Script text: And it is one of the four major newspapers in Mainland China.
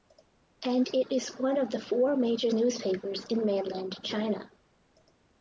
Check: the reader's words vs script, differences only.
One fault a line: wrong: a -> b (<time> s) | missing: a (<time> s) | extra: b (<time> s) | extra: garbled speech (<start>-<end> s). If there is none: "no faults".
no faults